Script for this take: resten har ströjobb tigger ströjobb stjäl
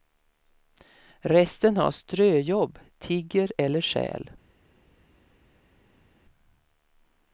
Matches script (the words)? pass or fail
fail